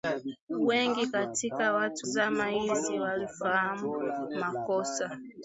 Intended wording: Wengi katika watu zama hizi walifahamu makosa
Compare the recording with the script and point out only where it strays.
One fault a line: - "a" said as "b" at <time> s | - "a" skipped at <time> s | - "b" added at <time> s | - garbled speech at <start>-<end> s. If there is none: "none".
none